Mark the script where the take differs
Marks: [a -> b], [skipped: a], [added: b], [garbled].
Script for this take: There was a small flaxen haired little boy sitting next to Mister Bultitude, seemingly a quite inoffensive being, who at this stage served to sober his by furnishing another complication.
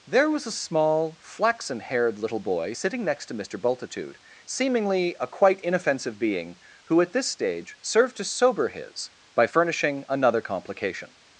There was a small flaxen haired little boy sitting next to Mister Bultitude, seemingly a quite inoffensive being, who at this stage served to sober his by furnishing another complication.